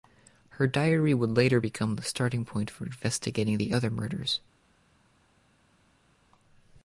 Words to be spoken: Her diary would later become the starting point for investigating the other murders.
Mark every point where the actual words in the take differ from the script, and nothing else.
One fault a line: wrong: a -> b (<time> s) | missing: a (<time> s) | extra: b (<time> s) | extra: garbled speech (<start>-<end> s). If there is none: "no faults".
no faults